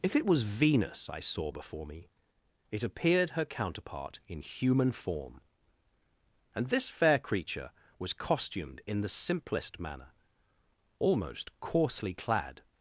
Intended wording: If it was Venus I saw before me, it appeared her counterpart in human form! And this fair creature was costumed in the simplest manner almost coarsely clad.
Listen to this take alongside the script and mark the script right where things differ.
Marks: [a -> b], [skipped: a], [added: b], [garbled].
If it was Venus I saw before me, it appeared her counterpart in human form! And this fair creature was costumed in the simplest manner almost coarsely clad.